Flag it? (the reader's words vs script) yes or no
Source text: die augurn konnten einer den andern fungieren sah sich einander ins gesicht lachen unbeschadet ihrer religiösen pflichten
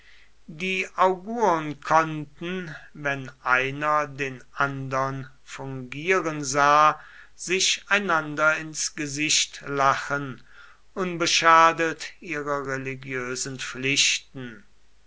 yes